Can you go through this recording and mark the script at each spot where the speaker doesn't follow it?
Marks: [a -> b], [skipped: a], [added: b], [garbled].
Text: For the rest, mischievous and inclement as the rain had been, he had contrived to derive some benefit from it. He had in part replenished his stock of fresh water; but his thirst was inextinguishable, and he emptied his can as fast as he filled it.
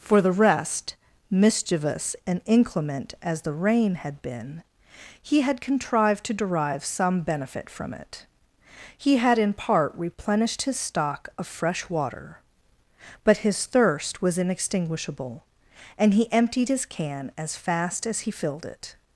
For the rest, mischievous and inclement as the rain had been, he had contrived to derive some benefit from it. He had in part replenished his stock of fresh water; but his thirst was inextinguishable, and he emptied his can as fast as he filled it.